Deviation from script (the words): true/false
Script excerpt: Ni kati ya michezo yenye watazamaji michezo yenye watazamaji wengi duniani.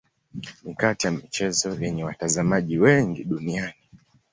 true